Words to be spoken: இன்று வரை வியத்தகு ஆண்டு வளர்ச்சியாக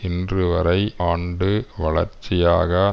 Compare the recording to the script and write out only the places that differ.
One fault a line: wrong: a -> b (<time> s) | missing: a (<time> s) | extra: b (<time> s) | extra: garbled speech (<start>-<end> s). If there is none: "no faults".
missing: வியத்தகு (0.8 s)